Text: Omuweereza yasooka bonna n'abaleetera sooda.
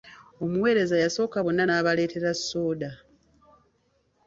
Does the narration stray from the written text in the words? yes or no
no